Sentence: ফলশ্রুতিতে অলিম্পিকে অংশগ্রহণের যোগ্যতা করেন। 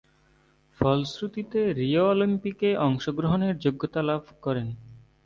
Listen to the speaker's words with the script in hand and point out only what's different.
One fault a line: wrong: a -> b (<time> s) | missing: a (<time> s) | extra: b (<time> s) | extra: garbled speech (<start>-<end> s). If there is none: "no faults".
extra: রিও (1.8 s)
extra: লাভ (4.1 s)